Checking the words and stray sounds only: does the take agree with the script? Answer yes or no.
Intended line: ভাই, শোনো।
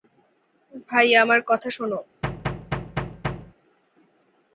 no